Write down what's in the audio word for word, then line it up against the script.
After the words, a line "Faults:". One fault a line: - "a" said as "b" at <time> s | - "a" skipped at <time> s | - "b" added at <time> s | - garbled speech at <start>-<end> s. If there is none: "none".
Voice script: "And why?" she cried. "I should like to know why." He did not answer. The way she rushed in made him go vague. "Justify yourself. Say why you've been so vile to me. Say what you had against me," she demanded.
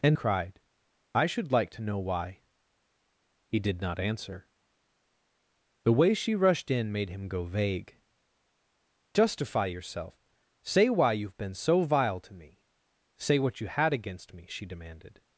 "And cried. "I should like to know why." He did not answer. The way she rushed in made him go vague. "Justify yourself. Say why you've been so vile to me. Say what you had against me," she demanded.
Faults:
- "why she" skipped at 0.2 s